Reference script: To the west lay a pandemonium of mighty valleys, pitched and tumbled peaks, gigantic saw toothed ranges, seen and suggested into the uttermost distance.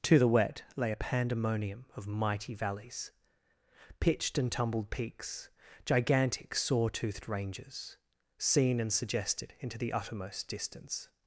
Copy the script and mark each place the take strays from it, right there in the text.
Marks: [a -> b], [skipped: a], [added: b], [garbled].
To the [west -> wet] lay a pandemonium of mighty valleys, pitched and tumbled peaks, gigantic saw toothed ranges, seen and suggested into the uttermost distance.